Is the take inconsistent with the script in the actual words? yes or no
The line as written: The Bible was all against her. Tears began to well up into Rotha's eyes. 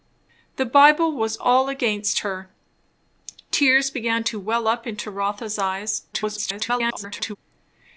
yes